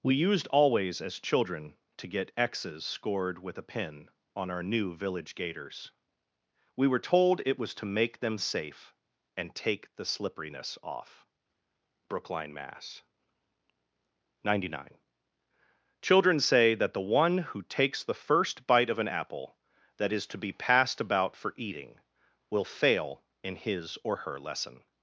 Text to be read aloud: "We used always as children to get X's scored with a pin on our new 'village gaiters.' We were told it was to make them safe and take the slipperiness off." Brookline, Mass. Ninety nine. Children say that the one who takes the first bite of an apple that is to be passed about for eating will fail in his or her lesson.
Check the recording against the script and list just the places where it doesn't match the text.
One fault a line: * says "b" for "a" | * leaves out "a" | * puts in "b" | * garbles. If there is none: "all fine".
all fine